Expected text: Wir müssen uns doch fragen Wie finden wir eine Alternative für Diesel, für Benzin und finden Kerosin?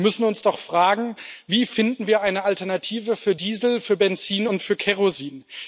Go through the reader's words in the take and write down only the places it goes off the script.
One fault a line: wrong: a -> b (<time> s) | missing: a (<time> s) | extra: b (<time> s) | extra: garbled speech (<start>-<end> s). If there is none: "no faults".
wrong: finden -> für (4.6 s)